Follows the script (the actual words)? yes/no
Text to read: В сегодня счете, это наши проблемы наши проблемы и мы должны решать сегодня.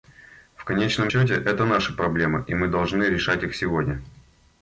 no